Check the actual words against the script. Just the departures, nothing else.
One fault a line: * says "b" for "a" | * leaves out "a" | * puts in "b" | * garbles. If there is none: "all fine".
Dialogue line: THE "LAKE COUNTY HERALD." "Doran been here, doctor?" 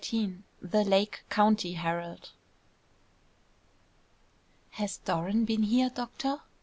* puts in "Has"